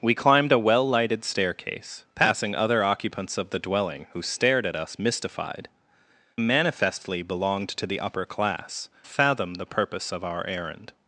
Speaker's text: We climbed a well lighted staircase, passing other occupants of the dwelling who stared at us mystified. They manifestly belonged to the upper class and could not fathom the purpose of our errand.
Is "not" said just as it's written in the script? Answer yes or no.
no